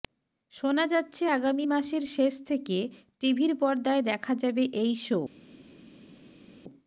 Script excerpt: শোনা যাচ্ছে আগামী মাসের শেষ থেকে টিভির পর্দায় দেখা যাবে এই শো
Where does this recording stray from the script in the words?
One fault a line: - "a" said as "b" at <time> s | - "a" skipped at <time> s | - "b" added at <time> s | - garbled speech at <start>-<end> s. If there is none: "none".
none